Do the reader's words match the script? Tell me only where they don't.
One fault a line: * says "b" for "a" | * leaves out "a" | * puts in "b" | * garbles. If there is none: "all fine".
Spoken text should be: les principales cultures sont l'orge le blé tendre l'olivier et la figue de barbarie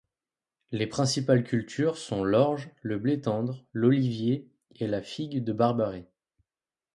all fine